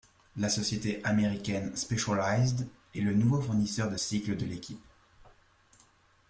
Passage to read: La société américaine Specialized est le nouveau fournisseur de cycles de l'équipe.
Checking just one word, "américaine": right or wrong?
right